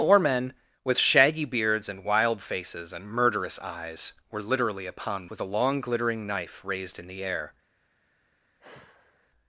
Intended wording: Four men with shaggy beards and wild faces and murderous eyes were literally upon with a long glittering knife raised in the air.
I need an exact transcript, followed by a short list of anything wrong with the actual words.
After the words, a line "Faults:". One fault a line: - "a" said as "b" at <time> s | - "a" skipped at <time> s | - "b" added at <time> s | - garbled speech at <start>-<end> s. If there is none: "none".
Four men with shaggy beards and wild faces and murderous eyes were literally upon with a long glittering knife raised in the air.
Faults:
none